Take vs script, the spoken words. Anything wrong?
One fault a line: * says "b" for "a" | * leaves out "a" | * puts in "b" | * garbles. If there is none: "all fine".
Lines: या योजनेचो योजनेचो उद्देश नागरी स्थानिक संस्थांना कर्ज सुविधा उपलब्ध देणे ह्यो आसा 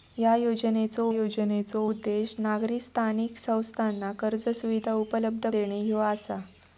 all fine